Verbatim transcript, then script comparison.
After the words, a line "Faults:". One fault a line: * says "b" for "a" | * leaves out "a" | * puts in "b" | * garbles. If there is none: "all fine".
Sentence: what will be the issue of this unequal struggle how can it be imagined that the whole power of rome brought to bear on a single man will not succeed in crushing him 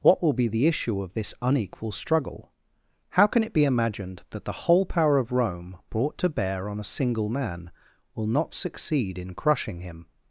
what will be the issue of this unequal struggle how can it be imagined that the whole power of rome brought to bear on a single man will not succeed in crushing him
Faults:
all fine